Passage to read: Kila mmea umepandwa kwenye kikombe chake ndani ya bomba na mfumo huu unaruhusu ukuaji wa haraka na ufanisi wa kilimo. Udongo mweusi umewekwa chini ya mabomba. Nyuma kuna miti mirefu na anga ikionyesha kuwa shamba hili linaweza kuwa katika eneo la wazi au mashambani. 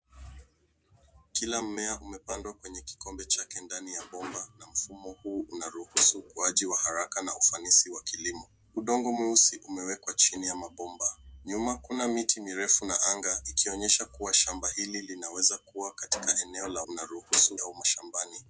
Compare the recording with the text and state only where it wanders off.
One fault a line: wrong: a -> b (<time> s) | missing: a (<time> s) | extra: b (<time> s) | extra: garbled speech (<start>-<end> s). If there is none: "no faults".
wrong: wazi -> unaruhusu (16.9 s)